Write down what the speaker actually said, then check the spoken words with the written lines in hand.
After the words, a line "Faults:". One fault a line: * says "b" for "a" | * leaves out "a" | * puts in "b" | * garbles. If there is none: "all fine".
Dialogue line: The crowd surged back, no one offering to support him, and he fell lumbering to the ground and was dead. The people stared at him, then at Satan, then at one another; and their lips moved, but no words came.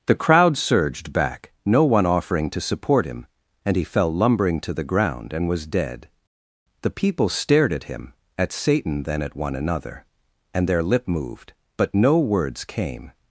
The crowd surged back, no one offering to support him, and he fell lumbering to the ground and was dead. The people stared at him, at Satan, then at one another; and their lip moved, but no words came.
Faults:
* leaves out "then"
* says "lip" for "lips"